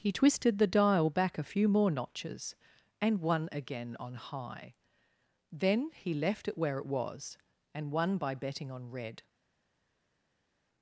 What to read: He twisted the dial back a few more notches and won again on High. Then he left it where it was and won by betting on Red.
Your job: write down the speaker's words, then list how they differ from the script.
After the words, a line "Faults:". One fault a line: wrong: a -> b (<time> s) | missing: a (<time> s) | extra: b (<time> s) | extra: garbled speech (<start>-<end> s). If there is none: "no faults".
He twisted the dial back a few more notches and won again on High. Then he left it where it was and won by betting on Red.
Faults:
no faults